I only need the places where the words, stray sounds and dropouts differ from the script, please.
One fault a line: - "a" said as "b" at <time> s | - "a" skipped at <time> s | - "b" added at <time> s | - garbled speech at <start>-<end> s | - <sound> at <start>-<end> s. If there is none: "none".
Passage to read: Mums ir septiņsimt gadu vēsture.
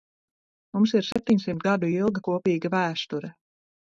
- dropout at 1.1-1.2 s
- "ilga kopīga" added at 1.9 s